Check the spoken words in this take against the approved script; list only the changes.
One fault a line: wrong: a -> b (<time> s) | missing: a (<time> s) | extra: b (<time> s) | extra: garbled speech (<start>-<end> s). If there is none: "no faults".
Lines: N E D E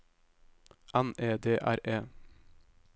extra: R (1.6 s)